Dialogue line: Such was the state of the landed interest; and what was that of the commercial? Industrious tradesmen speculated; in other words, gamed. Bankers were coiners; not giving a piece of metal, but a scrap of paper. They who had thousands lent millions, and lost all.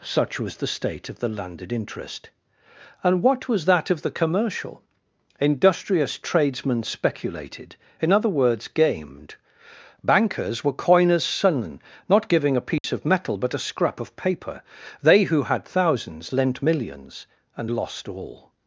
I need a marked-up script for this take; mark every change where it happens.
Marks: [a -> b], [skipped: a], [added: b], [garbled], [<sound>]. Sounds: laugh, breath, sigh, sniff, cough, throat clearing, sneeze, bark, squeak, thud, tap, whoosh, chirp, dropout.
Such was the state of the landed interest; and what was that of the commercial? Industrious tradesmen speculated; in other words, gamed. Bankers were coiners; [added: sons] not giving a piece [dropout] of metal, but a scrap of paper. They who had thousands lent millions, and lost all.